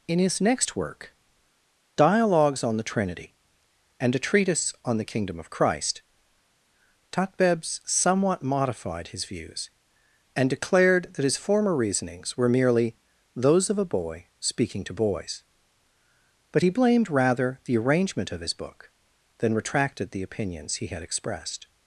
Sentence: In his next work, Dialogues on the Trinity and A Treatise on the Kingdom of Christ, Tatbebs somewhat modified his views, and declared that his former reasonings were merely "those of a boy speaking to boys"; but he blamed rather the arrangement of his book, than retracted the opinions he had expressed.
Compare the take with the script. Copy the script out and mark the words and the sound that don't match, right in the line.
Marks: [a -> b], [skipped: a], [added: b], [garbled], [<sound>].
In his next work, Dialogues on the Trinity and A Treatise on the Kingdom of Christ, Tatbebs somewhat modified his views, and declared that his former reasonings were merely "those of a boy speaking to boys"; but he blamed rather the arrangement of his book, than retracted the opinions he had expressed.